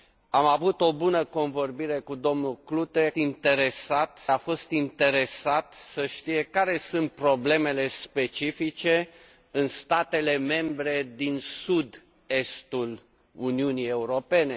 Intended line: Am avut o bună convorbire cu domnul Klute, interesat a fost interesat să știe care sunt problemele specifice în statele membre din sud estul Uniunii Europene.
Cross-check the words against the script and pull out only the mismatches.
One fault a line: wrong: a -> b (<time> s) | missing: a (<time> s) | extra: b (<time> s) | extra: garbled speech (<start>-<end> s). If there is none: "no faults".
no faults